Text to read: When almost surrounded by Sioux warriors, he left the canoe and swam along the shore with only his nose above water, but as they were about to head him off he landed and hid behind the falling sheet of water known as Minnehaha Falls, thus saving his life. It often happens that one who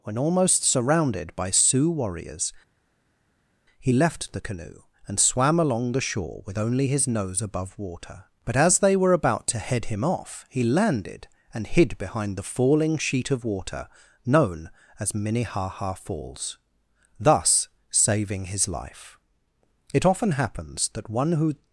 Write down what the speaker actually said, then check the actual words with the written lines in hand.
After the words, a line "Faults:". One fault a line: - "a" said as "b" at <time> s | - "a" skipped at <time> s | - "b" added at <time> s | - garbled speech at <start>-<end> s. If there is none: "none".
When almost surrounded by Sioux warriors, he left the canoe and swam along the shore with only his nose above water, but as they were about to head him off he landed and hid behind the falling sheet of water known as Minnehaha Falls, thus saving his life. It often happens that one who
Faults:
none